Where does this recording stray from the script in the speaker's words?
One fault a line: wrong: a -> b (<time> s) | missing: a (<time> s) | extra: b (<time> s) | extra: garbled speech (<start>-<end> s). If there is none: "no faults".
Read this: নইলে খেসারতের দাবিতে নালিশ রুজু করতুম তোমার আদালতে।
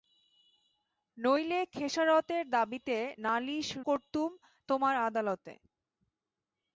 missing: রুজু (3.7 s)